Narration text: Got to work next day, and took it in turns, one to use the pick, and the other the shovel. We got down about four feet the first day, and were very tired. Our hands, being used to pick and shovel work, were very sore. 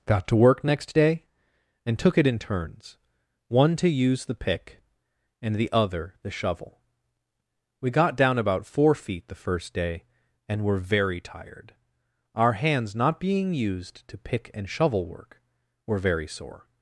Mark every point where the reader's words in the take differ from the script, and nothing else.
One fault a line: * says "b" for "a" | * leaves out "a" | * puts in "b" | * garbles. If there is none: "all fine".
* puts in "not"